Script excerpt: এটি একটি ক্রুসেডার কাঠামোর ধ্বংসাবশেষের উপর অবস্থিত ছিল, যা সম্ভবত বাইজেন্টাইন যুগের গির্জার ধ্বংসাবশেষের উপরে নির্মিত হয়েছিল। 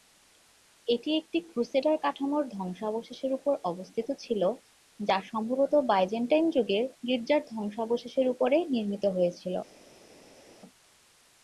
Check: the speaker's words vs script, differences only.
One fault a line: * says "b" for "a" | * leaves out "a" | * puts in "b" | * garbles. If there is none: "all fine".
all fine